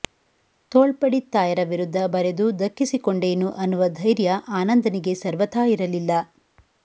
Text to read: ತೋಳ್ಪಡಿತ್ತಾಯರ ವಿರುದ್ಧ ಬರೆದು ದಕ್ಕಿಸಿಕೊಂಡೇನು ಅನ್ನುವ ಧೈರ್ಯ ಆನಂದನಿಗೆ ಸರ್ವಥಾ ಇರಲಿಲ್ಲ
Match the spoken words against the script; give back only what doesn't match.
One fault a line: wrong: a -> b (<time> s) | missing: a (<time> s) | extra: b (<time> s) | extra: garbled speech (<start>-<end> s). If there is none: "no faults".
no faults